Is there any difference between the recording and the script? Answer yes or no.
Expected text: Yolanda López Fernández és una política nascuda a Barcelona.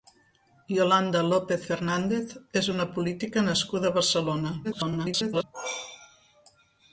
yes